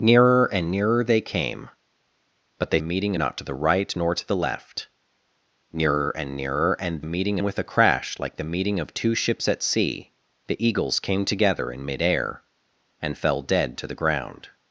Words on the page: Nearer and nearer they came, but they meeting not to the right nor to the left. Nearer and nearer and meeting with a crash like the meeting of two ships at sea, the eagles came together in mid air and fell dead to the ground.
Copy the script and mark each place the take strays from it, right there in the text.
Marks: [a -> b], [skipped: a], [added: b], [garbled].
Nearer and nearer they came, but they meeting not to the right nor to the left. Nearer and nearer and meeting with a crash like the meeting of two ships at sea, the eagles came together in mid air and fell dead to the ground.